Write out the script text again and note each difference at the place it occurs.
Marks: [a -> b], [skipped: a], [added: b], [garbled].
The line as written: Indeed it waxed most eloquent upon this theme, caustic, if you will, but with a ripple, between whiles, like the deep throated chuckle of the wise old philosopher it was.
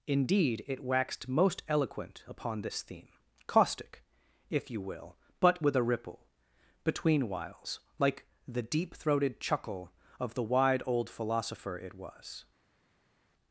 Indeed it waxed most eloquent upon this theme, caustic, if you will, but with a ripple, between whiles, like the deep throated chuckle of the [wise -> wide] old philosopher it was.